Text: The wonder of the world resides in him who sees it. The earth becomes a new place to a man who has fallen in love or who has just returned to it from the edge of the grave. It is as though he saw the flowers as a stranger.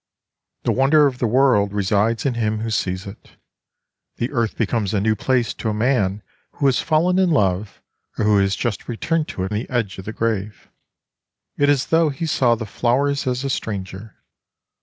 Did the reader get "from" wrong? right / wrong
wrong